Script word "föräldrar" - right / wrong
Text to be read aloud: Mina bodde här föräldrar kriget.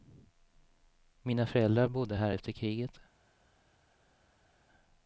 wrong